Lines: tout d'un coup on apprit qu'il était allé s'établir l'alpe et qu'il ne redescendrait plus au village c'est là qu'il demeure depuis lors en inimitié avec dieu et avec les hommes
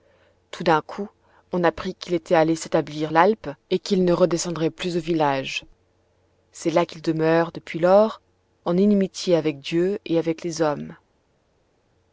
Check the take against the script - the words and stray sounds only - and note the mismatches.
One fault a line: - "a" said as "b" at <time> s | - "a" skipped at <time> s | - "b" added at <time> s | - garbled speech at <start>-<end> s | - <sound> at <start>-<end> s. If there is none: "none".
none